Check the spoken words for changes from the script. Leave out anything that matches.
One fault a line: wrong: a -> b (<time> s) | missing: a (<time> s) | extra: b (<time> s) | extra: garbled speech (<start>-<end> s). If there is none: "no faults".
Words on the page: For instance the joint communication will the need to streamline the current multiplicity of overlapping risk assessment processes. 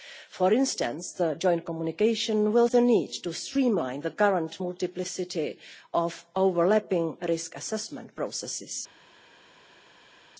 no faults